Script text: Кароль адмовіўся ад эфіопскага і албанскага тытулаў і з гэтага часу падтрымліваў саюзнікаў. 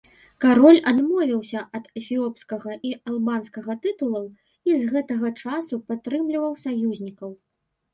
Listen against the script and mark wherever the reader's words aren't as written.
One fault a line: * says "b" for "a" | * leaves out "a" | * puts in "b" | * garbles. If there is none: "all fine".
all fine